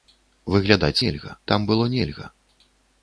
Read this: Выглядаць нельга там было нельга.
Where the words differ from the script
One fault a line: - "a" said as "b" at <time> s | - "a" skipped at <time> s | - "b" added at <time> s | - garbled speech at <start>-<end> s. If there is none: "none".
none